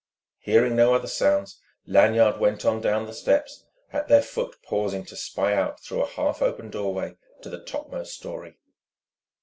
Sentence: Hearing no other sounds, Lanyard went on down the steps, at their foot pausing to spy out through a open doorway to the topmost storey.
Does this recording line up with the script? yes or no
no